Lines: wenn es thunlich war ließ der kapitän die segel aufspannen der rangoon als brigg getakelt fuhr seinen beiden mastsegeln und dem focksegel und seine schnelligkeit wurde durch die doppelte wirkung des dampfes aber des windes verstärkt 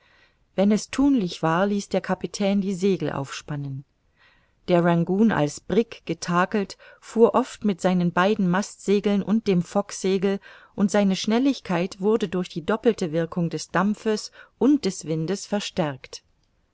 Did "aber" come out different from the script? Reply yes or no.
yes